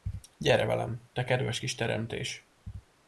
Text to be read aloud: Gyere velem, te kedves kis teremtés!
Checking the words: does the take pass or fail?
pass